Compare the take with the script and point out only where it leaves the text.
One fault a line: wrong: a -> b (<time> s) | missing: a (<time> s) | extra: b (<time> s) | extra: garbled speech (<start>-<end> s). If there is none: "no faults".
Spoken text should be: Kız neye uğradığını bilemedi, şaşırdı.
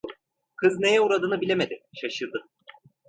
no faults